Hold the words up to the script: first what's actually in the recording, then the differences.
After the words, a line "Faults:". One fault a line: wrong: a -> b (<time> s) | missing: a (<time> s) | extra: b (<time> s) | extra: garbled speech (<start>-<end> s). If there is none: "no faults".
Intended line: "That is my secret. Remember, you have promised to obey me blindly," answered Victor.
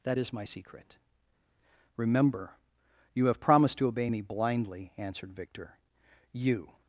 "That is my secret. Remember, you have promised to obey me blindly," answered Victor. "You
Faults:
extra: You (6.3 s)